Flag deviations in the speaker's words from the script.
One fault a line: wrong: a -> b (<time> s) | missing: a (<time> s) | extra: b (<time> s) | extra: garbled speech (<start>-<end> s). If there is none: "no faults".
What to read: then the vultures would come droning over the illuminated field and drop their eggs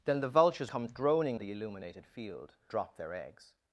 missing: would (0.7 s)
missing: over (1.4 s)
missing: and (2.6 s)